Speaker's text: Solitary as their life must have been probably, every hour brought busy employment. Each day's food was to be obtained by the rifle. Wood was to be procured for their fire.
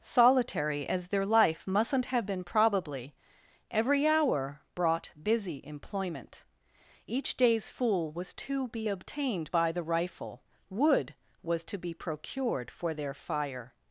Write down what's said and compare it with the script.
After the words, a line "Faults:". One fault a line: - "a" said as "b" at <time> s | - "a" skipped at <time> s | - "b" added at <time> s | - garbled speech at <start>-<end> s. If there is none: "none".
Solitary as their life mustn't have been probably, every hour brought busy employment. Each day's fool was to be obtained by the rifle. Wood was to be procured for their fire.
Faults:
- "must" said as "mustn't" at 1.7 s
- "food" said as "fool" at 7.7 s